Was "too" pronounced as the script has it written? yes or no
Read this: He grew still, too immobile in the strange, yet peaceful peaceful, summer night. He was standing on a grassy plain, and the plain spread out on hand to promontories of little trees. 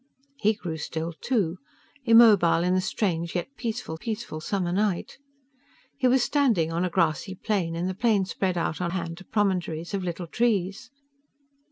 yes